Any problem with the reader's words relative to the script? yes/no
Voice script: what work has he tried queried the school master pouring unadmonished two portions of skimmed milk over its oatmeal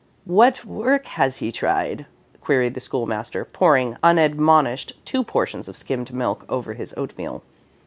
yes